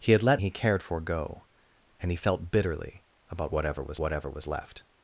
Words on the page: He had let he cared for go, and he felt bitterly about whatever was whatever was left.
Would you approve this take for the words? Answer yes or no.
yes